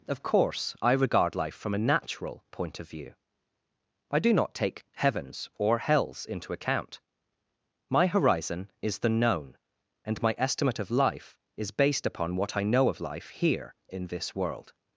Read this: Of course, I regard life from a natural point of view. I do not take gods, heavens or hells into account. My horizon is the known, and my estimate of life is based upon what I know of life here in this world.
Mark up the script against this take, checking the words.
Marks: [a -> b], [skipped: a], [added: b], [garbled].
Of course, I regard life from a natural point of view. I do not take [skipped: gods,] heavens or hells into account. My horizon is the known, and my estimate of life is based upon what I know of life here in this world.